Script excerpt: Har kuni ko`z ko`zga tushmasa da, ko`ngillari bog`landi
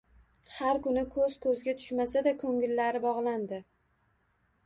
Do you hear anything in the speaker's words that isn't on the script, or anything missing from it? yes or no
no